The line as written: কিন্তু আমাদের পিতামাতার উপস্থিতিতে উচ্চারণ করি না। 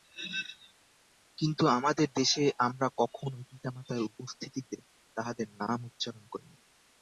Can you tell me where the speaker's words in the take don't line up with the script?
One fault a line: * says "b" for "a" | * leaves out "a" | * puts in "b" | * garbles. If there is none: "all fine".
* puts in "দেশে আমরা কখনই"
* puts in "তাঁহাদের নাম"